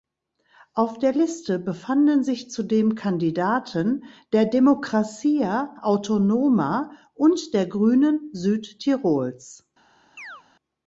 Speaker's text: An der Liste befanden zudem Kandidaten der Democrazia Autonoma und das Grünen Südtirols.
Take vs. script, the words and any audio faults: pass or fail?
fail